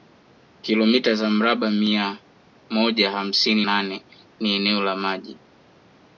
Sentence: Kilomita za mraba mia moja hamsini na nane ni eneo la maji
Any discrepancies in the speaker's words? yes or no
yes